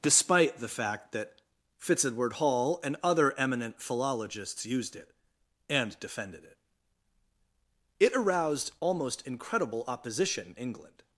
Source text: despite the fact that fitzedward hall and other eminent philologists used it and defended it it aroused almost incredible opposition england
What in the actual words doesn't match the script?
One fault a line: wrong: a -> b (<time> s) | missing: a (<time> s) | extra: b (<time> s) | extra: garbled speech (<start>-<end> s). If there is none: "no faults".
no faults